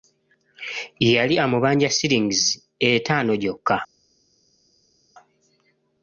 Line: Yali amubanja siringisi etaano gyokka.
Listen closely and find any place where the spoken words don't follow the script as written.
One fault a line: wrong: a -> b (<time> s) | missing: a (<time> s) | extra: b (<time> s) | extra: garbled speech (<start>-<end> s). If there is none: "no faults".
no faults